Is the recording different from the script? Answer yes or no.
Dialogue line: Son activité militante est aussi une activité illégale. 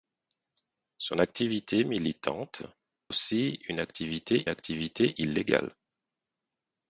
yes